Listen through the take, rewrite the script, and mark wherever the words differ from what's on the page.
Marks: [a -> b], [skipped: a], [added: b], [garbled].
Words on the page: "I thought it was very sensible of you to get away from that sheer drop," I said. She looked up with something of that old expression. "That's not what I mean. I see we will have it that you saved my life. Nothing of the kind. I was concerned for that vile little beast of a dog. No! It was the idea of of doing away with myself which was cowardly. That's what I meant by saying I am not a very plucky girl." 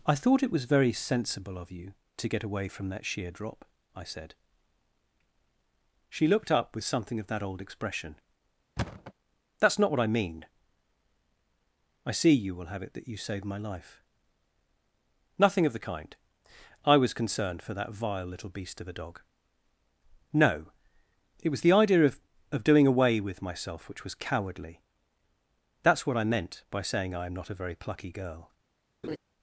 "I thought it was very sensible of you to get away from that sheer drop," I said. She looked up with something of that old expression. "That's not what I mean. I see [we -> you] will have it that you saved my life. Nothing of the kind. I was concerned for that vile little beast of a dog. No! It was the idea of of doing away with myself which was cowardly. That's what I meant by saying I am not a very plucky girl."